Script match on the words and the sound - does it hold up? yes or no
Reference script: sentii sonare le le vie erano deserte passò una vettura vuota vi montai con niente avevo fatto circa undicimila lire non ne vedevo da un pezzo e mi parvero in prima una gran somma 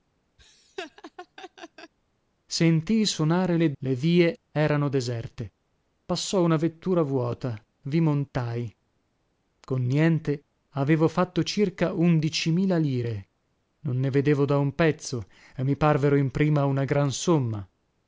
no